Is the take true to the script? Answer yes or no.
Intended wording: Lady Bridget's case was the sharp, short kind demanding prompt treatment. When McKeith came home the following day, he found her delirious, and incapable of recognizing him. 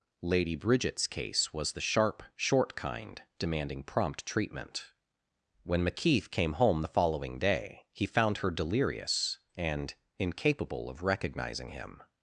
yes